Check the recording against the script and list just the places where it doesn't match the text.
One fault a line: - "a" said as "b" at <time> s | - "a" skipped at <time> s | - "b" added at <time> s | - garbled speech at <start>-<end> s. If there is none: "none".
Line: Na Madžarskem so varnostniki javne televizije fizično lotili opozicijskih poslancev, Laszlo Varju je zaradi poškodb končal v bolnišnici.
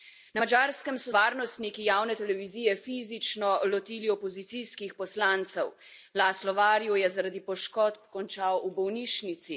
none